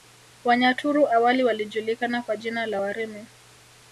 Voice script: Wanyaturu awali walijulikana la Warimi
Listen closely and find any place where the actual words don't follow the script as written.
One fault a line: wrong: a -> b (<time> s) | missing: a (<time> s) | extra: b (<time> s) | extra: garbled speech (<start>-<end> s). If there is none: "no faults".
extra: kwa jina (2.2 s)